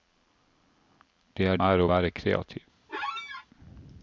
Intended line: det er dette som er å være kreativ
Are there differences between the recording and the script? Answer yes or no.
yes